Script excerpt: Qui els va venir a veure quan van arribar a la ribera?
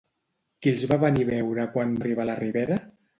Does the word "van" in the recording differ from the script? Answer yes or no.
yes